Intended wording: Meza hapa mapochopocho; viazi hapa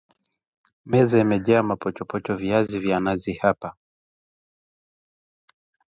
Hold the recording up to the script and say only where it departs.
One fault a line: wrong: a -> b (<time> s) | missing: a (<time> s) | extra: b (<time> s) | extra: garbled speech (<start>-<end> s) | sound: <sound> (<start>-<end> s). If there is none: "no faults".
wrong: hapa -> imejaa (1.2 s)
extra: vya nazi (2.8 s)